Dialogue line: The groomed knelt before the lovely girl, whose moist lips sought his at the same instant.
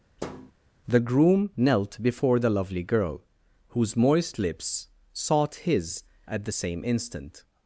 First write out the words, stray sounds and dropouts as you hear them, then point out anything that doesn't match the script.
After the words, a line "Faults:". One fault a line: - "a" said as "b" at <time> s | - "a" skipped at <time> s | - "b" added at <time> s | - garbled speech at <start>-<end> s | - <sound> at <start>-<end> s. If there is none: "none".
The groom knelt before the lovely girl, whose moist lips sought his at the same instant.
Faults:
- thud at 0.2-0.5 s
- "groomed" said as "groom" at 1.0 s